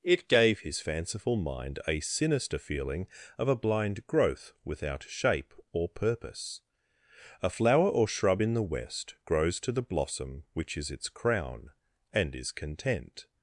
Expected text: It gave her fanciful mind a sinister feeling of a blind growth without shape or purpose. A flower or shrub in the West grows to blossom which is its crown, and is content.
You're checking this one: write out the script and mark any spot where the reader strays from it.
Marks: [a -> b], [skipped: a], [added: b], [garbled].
It gave [her -> his] fanciful mind a sinister feeling of a blind growth without shape or purpose. A flower or shrub in the West grows to [added: the] blossom which is its crown, and is content.